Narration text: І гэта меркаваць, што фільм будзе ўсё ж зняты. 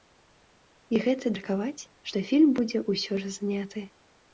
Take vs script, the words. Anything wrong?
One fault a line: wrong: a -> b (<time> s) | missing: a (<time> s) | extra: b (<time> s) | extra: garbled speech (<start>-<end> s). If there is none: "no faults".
no faults